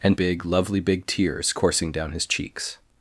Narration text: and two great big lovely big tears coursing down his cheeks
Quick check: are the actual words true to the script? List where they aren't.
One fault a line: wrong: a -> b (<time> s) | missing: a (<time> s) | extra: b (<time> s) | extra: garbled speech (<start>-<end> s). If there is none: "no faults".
missing: two great (0.2 s)